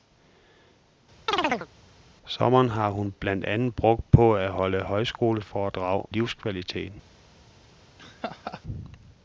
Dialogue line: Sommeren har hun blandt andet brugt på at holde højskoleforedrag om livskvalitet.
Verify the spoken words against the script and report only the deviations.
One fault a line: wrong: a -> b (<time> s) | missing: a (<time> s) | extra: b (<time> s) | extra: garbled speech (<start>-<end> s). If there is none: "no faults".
missing: om (6.1 s)